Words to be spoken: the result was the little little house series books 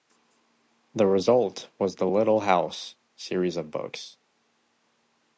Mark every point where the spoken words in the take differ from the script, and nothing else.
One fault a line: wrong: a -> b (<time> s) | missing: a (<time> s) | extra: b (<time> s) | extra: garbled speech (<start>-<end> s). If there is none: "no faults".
missing: little (2.4 s)
extra: of (3.6 s)